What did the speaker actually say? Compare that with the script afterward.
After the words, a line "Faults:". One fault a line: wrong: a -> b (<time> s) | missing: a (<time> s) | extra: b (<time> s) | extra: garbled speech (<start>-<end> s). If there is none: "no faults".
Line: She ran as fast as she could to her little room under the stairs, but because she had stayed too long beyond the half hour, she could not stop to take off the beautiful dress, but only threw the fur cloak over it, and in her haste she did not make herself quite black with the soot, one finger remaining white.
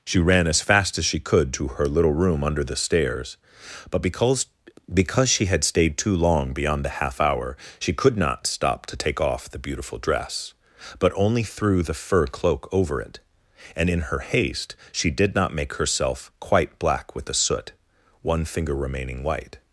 She ran as fast as she could to her little room under the stairs, but because because she had stayed too long beyond the half hour, she could not stop to take off the beautiful dress, but only threw the fur cloak over it, and in her haste she did not make herself quite black with the soot, one finger remaining white.
Faults:
extra: because (4.9 s)